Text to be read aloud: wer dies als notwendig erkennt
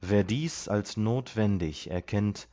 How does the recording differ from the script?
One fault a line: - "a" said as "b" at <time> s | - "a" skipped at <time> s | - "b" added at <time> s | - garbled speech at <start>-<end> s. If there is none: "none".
none